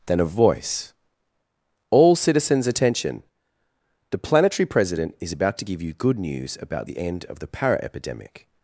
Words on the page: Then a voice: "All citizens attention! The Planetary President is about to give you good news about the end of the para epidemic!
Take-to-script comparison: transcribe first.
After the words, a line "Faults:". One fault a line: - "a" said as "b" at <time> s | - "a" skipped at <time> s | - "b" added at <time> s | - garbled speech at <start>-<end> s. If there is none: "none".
Then a voice: "All citizens attention! The Planetary President is about to give you good news about the end of the para epidemic!
Faults:
none